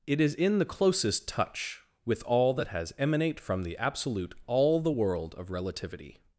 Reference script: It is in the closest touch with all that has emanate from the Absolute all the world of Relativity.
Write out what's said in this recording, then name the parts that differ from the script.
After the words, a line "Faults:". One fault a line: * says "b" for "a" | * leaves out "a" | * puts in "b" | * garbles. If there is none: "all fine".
It is in the closest touch with all that has emanate from the Absolute all the world of Relativity.
Faults:
all fine